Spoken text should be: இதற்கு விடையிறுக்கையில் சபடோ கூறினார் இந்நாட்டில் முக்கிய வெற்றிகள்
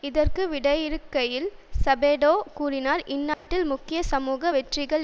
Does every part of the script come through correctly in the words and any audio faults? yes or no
no